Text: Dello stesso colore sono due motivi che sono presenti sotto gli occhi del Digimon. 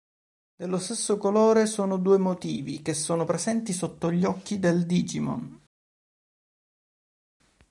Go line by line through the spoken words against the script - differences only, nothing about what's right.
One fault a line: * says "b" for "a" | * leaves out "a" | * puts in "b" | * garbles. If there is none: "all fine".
all fine